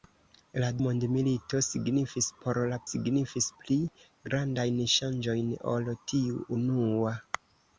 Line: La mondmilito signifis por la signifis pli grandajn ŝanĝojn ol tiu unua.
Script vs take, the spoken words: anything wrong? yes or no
no